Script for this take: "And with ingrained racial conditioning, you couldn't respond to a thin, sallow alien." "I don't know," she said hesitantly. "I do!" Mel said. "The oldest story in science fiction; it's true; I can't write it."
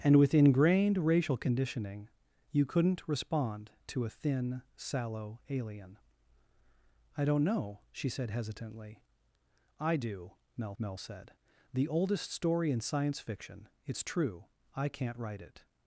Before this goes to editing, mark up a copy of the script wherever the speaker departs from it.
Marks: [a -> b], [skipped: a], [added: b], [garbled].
"And with ingrained racial conditioning, you couldn't respond to a thin, sallow alien." "I don't know," she said hesitantly. "I do!" Mel [added: mel] said. "The oldest story in science fiction; it's true; I can't write it."